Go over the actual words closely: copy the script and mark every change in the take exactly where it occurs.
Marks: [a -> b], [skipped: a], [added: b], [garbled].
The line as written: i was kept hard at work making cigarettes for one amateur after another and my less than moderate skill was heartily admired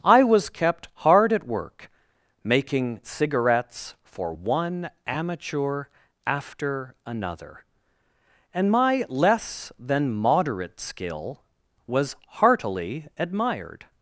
i was kept hard at work making cigarettes for one amateur after another and my less than moderate skill was heartily admired